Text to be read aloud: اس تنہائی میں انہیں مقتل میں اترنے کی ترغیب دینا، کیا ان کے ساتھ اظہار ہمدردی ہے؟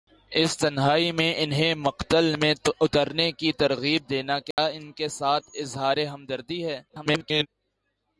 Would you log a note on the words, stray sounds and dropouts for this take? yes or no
yes